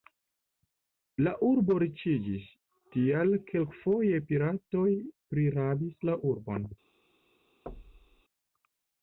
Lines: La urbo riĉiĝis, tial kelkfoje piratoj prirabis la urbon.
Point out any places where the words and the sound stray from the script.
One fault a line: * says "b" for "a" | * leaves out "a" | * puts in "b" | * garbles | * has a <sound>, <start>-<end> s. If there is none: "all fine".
* has a thud, 7.7-8.2 s